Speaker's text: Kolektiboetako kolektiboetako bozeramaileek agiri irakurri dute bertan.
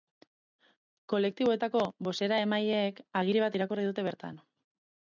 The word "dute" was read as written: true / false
true